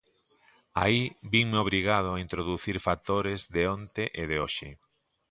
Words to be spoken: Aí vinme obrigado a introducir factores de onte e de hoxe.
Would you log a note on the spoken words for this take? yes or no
no